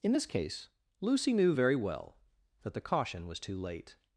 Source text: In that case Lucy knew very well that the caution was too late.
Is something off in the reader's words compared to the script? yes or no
yes